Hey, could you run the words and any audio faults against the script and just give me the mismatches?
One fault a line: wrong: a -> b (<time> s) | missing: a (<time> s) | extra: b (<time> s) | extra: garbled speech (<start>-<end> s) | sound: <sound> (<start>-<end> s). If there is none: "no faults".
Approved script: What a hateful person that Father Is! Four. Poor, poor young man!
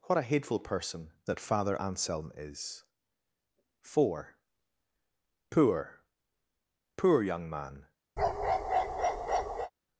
extra: Anselm (1.8 s)
sound: bark (8.2-9.7 s)